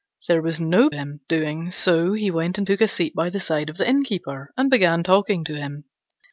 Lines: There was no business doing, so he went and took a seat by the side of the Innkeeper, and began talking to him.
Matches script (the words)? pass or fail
fail